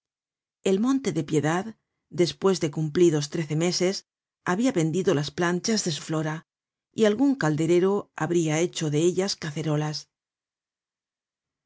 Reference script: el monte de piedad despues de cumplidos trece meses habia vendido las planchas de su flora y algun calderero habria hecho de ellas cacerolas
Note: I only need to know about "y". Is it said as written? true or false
true